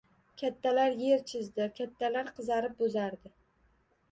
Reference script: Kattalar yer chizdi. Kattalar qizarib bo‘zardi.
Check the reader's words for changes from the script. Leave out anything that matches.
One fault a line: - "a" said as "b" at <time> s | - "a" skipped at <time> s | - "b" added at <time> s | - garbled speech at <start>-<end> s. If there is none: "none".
none